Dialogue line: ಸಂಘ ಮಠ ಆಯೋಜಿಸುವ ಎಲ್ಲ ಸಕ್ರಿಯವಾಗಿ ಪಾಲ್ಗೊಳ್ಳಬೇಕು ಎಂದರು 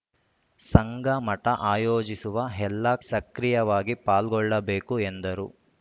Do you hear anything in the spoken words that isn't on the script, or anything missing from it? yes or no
no